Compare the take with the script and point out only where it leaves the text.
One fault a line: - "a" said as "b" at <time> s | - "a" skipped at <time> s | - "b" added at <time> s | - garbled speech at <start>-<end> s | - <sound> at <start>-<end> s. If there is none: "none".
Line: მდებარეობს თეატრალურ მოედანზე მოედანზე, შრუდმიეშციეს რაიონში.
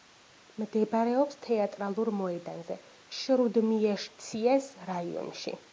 - "მოედანზე" skipped at 2.8 s